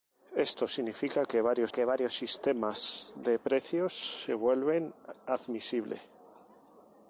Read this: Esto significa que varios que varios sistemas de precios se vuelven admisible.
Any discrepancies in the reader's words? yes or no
no